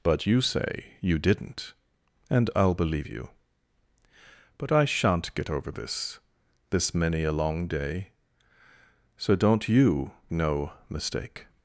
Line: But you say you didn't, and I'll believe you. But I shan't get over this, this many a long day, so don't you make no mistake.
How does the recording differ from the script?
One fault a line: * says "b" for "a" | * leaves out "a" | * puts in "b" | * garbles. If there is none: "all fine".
* leaves out "make"